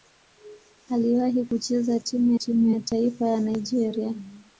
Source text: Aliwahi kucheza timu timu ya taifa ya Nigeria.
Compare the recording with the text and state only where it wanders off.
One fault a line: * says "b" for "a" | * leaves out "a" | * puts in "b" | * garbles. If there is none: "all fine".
all fine